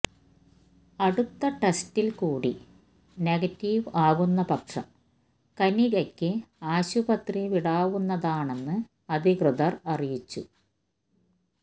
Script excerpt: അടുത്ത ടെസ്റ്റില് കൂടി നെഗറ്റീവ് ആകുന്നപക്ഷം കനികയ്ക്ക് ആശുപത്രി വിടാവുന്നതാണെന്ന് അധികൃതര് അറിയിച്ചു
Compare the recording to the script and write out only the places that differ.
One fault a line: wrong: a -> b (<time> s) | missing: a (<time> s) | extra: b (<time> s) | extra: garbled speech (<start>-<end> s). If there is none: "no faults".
no faults